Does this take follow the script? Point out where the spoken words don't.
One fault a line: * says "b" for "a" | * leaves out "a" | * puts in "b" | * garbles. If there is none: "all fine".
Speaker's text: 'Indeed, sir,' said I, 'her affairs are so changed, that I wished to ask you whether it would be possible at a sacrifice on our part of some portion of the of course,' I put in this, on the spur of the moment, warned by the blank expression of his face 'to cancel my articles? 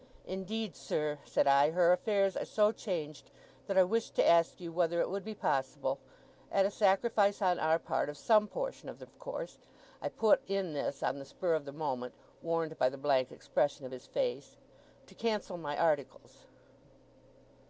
all fine